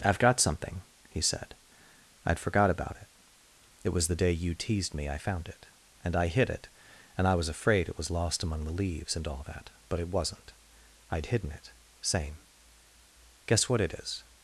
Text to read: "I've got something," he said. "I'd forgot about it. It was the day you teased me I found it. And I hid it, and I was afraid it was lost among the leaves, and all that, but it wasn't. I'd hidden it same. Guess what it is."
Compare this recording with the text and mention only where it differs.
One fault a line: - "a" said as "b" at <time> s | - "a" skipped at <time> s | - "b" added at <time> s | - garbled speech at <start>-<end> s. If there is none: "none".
none